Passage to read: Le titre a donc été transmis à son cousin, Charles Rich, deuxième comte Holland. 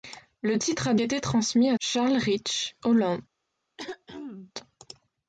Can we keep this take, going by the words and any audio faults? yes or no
no